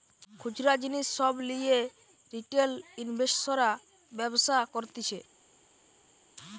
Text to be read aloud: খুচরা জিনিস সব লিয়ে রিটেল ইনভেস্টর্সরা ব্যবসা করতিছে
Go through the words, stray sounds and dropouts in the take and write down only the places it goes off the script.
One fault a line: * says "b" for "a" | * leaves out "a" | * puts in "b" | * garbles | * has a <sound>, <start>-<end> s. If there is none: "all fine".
all fine